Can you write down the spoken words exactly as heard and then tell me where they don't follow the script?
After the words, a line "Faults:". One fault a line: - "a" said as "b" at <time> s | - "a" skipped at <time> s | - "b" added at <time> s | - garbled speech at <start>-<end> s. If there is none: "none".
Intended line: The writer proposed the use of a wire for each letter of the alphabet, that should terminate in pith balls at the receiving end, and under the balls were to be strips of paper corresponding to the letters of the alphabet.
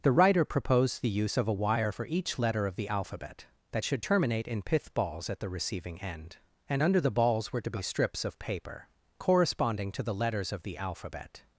The writer proposed the use of a wire for each letter of the alphabet, that should terminate in pith balls at the receiving end, and under the balls were to be strips of paper corresponding to the letters of the alphabet.
Faults:
none